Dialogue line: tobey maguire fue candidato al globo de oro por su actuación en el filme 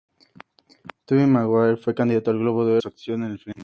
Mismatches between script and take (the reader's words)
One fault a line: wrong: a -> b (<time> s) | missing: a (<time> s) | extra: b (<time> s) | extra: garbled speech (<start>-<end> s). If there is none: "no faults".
missing: oro por (2.8 s)